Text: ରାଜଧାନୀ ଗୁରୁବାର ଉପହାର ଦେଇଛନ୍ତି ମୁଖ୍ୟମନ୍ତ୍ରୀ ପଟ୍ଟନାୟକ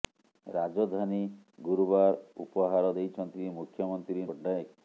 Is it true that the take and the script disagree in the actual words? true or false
false